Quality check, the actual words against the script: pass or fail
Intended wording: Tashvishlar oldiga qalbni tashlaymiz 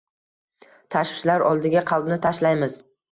pass